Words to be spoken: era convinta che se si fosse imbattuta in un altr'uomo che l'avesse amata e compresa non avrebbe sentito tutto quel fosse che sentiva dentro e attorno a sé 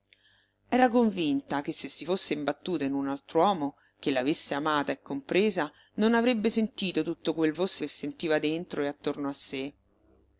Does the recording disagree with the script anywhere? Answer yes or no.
no